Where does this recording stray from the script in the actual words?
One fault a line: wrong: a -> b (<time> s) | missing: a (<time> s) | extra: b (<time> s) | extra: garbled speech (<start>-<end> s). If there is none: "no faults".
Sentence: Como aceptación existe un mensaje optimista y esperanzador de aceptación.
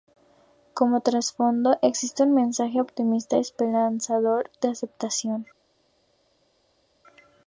wrong: aceptación -> trasfondo (1.0 s)